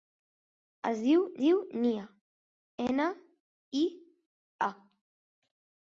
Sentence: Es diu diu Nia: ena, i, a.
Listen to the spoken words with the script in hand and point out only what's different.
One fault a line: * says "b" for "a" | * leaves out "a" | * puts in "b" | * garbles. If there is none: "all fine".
all fine